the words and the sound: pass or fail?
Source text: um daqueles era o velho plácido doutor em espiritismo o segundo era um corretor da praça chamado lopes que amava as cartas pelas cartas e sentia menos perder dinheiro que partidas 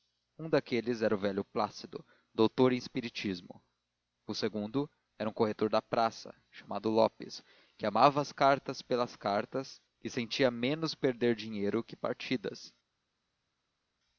pass